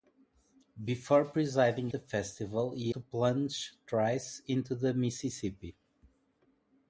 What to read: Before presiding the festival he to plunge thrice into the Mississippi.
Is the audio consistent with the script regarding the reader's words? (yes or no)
yes